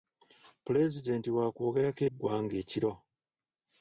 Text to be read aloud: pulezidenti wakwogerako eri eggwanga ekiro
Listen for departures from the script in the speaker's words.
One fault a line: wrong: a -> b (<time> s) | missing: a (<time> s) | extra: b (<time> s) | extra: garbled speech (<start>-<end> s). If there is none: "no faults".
missing: eri (2.0 s)